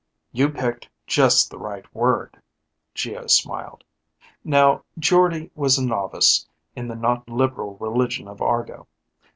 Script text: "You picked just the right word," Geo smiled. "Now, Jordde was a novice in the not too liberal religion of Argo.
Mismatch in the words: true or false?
true